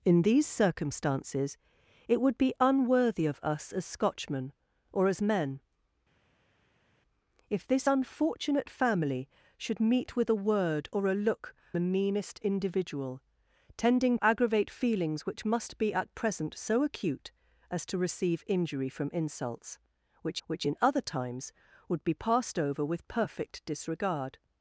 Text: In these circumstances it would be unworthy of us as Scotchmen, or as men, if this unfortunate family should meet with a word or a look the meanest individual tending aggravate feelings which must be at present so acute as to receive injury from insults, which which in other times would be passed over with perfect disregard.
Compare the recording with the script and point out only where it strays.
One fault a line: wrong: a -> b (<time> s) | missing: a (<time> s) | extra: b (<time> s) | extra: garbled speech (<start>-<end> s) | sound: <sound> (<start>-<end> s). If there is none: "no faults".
no faults